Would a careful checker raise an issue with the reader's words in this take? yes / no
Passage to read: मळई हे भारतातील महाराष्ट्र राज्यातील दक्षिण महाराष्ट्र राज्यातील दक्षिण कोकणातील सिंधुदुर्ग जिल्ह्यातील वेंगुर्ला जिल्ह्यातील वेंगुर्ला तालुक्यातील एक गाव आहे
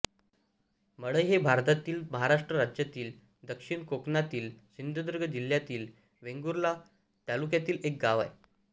yes